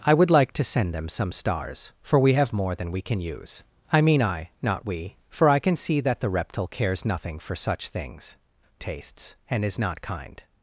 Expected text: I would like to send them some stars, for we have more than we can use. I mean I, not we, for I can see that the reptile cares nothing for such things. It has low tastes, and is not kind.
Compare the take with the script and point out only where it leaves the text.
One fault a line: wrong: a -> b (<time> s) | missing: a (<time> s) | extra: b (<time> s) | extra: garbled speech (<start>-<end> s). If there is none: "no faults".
missing: It has low (8.3 s)